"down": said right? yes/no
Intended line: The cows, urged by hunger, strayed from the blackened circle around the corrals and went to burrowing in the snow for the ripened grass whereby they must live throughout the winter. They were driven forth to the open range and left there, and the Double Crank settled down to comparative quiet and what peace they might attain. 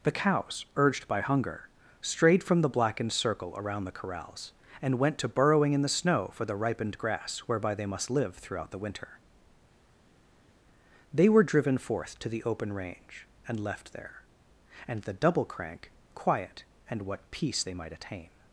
no